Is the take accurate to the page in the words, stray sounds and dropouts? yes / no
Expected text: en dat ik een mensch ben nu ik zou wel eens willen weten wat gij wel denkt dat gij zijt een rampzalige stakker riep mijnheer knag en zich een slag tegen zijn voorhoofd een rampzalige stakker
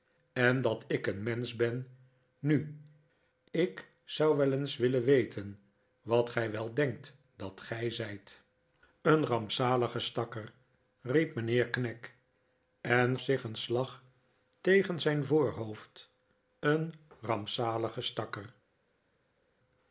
yes